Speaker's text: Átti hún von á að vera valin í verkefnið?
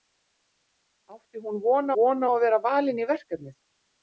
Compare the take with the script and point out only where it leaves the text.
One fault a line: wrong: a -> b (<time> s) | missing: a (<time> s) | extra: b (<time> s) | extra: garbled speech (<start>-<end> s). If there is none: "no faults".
extra: von (2.0 s)